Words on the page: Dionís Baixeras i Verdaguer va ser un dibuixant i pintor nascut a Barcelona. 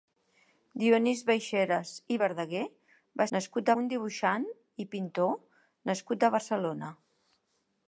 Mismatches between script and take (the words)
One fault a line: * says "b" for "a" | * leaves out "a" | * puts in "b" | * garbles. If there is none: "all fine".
* says "nascut" for "ser"